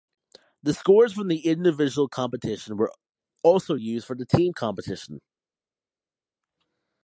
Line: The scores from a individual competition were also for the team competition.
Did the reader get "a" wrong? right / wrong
wrong